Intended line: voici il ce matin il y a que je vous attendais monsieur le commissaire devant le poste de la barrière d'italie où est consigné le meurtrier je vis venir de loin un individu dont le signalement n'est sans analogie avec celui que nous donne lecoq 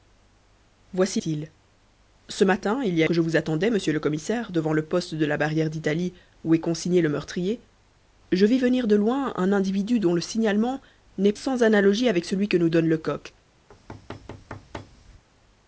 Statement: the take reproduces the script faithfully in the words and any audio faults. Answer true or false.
false